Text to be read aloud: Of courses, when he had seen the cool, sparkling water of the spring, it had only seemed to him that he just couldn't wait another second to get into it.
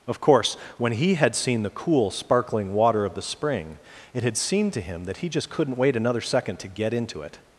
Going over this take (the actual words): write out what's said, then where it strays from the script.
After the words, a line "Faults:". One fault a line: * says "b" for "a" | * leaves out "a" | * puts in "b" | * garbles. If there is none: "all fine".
Of course, when he had seen the cool, sparkling water of the spring, it had seemed to him that he just couldn't wait another second to get into it.
Faults:
* says "course" for "courses"
* leaves out "only"